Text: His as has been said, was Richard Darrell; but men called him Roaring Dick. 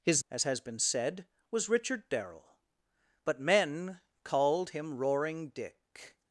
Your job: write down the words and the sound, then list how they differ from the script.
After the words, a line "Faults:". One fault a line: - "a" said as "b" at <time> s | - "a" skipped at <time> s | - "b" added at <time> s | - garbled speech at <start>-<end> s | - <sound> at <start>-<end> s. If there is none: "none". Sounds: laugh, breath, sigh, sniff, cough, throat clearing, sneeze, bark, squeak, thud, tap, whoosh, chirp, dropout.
His as has been said, was Richard Darrell; but men called him Roaring Dick.
Faults:
none